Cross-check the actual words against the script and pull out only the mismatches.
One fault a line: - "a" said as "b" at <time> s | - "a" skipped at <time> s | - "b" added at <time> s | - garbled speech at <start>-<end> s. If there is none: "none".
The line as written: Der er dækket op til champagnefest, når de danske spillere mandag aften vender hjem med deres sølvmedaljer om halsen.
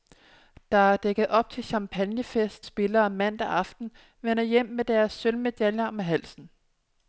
- "når de danske" skipped at 2.7 s